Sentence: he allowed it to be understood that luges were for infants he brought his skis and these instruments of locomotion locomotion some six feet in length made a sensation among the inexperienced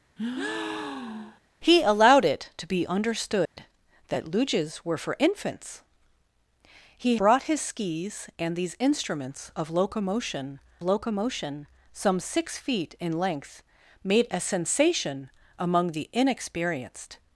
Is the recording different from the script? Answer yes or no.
no